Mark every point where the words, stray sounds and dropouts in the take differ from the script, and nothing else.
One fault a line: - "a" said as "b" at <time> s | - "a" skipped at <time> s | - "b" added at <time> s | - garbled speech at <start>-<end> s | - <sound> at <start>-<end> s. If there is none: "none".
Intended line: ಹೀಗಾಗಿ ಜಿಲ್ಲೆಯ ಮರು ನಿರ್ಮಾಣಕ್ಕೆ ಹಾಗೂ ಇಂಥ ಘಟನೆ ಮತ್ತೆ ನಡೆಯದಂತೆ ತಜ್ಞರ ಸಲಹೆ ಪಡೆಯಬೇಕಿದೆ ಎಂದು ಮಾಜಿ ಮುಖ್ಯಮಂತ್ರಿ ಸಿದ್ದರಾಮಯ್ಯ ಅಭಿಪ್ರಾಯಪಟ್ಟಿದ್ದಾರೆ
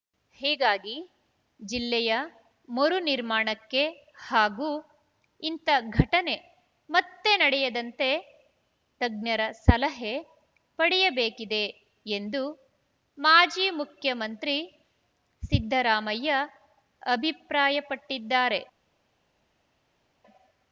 none